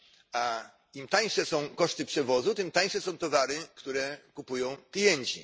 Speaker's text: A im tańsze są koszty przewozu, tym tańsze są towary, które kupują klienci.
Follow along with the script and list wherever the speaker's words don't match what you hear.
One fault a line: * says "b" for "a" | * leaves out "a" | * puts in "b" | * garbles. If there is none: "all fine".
all fine